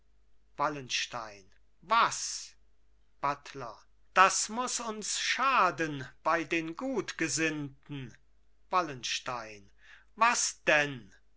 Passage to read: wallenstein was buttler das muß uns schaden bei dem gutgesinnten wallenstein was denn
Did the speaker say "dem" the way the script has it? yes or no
no